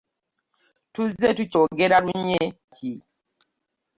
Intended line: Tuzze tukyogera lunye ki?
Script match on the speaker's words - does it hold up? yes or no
yes